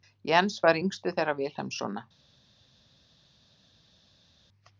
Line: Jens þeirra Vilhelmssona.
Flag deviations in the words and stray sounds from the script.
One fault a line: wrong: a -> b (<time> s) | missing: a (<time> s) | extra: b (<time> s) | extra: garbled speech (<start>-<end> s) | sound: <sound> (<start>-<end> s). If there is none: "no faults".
extra: var yngstur (0.7 s)